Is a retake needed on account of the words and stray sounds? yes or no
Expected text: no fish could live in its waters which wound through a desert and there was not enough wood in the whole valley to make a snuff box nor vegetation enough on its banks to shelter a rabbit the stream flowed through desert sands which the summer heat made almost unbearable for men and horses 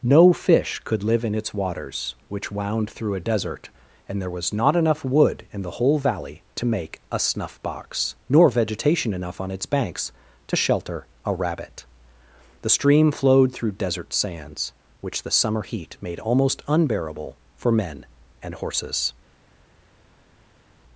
no